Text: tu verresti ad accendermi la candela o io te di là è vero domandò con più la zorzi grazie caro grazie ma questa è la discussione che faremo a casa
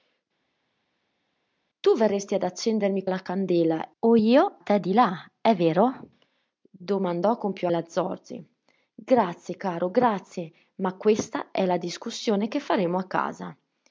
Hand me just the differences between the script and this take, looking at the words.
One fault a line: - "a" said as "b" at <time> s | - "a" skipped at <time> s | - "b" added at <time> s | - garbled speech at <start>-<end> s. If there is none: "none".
none